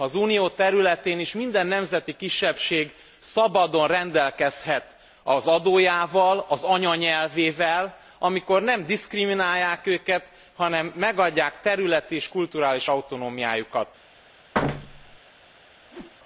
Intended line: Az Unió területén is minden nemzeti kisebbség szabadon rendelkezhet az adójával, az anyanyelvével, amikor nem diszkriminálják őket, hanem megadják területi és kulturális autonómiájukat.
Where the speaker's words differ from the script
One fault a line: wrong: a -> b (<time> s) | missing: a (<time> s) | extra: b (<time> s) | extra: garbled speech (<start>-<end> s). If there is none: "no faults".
no faults